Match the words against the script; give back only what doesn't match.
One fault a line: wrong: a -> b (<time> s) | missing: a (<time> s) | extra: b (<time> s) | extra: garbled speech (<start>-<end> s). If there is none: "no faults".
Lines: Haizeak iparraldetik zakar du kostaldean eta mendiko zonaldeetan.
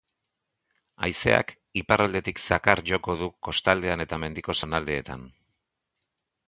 extra: joko (2.9 s)